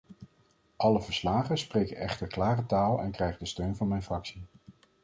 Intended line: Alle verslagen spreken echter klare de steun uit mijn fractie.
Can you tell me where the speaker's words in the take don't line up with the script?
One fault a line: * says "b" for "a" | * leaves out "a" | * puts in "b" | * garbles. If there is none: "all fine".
* puts in "taal en krijgen"
* says "van" for "uit"